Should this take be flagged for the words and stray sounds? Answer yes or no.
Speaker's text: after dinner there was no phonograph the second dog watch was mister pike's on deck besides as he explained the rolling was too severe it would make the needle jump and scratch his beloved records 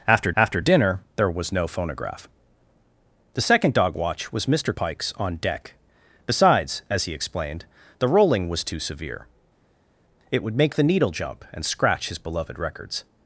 yes